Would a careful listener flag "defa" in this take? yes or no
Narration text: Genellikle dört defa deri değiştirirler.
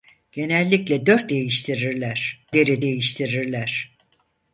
yes